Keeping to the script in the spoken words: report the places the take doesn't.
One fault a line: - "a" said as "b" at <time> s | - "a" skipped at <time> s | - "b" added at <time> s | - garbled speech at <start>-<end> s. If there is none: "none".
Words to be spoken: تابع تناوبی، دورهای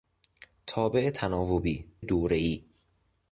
none